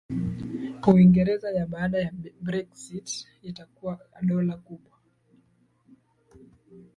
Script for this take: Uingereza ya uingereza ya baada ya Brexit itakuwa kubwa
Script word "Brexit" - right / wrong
right